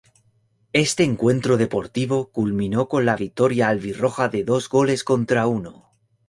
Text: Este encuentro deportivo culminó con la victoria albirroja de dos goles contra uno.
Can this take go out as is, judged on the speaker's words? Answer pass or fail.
pass